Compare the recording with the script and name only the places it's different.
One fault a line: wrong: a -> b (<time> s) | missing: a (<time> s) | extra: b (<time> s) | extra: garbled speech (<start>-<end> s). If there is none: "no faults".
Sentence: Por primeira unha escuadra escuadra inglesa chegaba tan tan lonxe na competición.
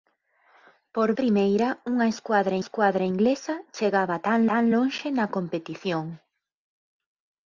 no faults